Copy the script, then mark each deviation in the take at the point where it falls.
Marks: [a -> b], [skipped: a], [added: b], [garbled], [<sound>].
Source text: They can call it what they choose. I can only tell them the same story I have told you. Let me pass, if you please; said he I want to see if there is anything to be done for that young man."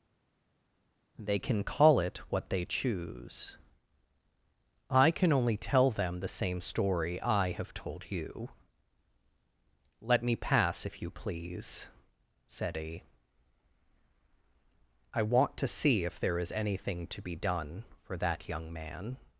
They can call it what they choose. I can only tell them the same story I have told you. Let me pass, if you please; said he I want to see if there is anything to be done for that young man."